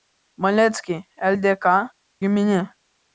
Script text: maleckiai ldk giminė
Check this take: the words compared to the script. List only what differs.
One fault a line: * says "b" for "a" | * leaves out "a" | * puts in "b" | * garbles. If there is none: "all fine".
all fine